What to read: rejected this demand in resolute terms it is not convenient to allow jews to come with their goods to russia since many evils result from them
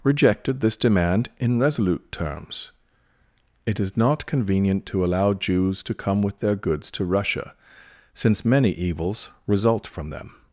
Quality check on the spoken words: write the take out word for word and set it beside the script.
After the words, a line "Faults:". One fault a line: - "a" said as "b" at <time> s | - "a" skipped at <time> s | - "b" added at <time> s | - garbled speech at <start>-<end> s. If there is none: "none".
rejected this demand in resolute terms it is not convenient to allow jews to come with their goods to russia since many evils result from them
Faults:
none